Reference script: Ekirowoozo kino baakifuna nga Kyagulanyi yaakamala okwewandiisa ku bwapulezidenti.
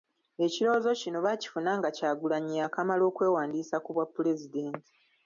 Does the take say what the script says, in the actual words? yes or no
yes